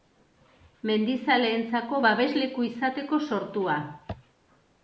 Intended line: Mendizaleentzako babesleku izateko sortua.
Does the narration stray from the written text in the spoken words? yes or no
no